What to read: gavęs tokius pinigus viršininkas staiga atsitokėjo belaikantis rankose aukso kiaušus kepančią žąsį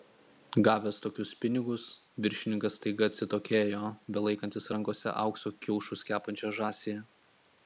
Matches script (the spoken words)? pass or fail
pass